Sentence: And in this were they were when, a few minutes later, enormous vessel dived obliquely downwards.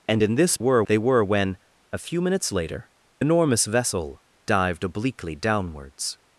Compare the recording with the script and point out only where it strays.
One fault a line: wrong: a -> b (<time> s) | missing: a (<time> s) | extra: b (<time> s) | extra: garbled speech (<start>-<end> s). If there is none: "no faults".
no faults